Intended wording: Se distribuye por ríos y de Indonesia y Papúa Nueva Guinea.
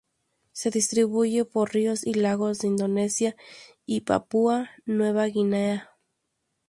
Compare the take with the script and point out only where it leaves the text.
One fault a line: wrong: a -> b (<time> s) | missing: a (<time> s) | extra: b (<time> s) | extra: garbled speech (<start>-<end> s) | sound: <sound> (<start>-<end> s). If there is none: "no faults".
extra: lagos (2.1 s)